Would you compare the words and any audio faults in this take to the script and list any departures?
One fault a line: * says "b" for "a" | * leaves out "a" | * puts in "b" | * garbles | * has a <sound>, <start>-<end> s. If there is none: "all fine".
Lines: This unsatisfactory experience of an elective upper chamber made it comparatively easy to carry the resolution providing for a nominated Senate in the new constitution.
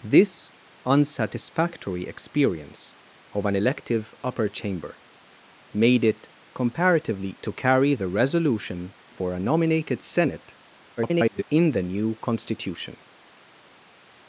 * leaves out "easy"
* leaves out "providing"
* garbles